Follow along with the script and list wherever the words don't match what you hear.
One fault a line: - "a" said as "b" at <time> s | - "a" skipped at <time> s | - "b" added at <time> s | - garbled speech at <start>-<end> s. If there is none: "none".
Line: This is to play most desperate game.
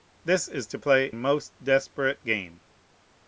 none